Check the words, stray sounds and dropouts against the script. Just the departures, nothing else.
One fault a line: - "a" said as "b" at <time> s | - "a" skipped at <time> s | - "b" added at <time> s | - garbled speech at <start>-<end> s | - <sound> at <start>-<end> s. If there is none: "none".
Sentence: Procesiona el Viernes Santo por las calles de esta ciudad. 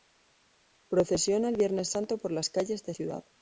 - "esta" skipped at 2.9 s